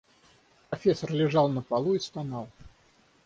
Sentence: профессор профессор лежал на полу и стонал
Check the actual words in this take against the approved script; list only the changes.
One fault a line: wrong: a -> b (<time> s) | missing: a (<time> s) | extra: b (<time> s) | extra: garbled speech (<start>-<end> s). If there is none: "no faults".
missing: профессор (1.1 s)